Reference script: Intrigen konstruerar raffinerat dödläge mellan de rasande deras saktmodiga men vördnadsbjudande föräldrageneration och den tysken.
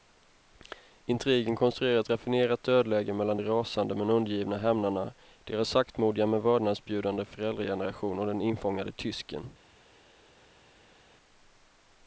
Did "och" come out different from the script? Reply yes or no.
no